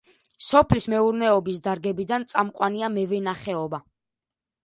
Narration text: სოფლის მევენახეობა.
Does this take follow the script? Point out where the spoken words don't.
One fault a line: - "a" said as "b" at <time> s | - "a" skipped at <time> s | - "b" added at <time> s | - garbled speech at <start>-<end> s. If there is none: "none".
- "მეურნეობის დარგებიდან წამყვანია" added at 0.9 s